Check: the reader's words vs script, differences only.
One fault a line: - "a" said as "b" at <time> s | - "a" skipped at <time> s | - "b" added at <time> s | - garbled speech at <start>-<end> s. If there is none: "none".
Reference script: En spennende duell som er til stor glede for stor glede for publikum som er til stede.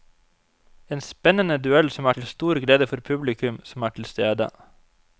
- "stor glede for" skipped at 3.0 s